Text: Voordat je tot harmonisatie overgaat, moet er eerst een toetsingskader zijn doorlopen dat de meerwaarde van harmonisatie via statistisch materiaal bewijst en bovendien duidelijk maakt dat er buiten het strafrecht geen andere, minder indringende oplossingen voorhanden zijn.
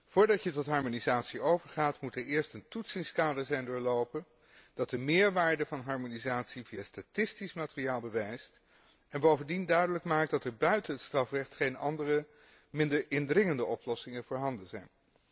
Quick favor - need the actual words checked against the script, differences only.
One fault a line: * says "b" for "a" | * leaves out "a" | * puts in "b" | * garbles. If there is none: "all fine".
all fine